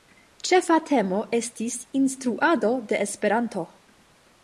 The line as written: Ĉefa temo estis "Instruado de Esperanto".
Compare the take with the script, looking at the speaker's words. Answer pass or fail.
pass